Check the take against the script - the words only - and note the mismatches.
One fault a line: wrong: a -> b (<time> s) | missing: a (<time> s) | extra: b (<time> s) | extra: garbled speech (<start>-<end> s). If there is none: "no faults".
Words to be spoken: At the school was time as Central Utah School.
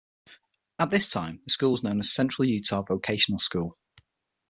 extra: this time (0.9 s)
wrong: time -> known (1.8 s)
extra: Vocational (2.8 s)